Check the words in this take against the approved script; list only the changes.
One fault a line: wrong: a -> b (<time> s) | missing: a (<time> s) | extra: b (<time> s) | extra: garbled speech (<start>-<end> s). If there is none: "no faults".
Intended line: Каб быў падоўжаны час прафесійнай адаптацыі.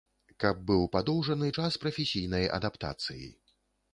no faults